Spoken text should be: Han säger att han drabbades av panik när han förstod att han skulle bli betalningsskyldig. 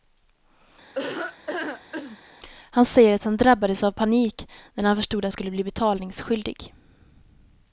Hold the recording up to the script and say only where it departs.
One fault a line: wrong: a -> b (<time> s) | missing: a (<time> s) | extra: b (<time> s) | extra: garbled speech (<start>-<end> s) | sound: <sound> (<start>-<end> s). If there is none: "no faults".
sound: laugh (0.9-2.2 s)
missing: han (5.3 s)